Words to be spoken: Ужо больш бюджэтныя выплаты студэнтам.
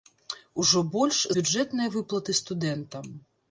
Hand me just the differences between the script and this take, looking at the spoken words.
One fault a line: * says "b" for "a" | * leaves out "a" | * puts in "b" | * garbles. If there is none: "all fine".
all fine